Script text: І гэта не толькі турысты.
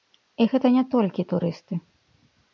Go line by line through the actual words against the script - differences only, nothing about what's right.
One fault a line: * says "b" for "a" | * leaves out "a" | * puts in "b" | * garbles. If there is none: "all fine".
all fine